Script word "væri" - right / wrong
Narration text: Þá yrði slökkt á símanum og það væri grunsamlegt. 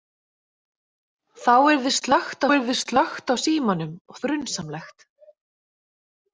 wrong